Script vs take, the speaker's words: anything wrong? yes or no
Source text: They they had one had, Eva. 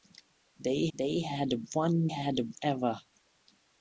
no